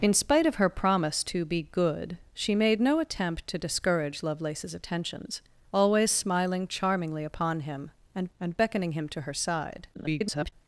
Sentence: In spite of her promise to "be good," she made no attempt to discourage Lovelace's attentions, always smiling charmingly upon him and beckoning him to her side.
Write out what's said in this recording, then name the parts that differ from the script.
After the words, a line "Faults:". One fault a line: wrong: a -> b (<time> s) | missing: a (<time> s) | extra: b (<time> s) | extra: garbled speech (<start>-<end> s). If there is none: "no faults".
In spite of her promise to "be good," she made no attempt to discourage Lovelace's attentions, always smiling charmingly upon him and and beckoning him to her side. [garbled]
Faults:
extra: and (8.4 s)
extra: garbled speech (9.9-10.5 s)